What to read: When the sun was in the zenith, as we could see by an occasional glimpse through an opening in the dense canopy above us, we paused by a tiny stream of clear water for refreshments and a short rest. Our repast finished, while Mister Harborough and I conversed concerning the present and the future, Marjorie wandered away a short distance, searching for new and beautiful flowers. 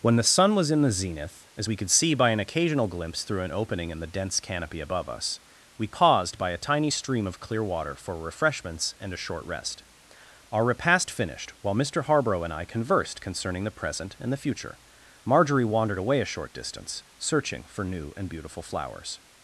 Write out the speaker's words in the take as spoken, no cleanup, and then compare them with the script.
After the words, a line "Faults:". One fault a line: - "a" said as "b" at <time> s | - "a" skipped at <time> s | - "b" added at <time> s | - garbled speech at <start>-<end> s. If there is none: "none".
When the sun was in the zenith, as we could see by an occasional glimpse through an opening in the dense canopy above us, we paused by a tiny stream of clear water for refreshments and a short rest. Our repast finished, while Mister Harborough and I conversed concerning the present and the future, Marjorie wandered away a short distance, searching for new and beautiful flowers.
Faults:
none